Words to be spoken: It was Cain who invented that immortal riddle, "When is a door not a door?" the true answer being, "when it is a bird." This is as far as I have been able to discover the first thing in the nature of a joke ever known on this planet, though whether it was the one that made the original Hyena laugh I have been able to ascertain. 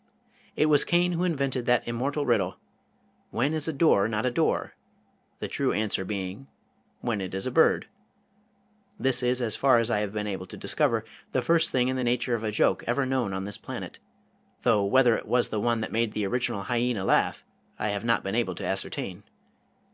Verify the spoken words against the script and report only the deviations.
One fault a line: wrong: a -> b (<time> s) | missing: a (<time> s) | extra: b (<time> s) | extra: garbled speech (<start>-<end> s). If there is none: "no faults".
extra: not (18.0 s)